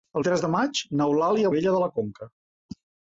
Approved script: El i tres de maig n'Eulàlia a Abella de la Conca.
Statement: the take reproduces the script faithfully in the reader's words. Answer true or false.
true